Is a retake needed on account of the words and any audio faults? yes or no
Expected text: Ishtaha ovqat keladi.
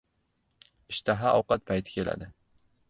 yes